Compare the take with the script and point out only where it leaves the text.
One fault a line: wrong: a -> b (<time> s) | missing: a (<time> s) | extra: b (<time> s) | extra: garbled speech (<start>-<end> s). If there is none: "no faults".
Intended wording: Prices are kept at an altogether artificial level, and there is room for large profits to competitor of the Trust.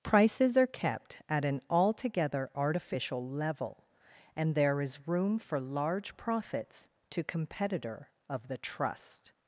no faults